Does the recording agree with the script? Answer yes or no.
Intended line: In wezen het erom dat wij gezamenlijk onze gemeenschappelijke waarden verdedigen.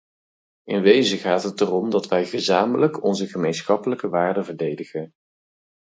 no